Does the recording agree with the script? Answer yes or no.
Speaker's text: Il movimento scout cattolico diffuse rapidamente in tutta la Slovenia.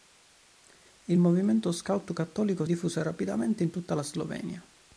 yes